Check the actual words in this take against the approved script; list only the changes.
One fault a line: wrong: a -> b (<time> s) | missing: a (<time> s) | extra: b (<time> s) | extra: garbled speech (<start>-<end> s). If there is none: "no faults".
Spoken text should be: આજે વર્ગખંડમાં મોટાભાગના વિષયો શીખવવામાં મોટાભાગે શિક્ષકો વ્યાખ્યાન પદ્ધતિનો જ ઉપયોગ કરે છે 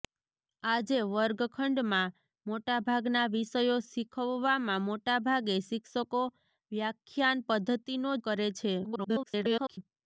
missing: જ ઉપયોગ (8.2 s)
extra: garbled speech (8.8-9.8 s)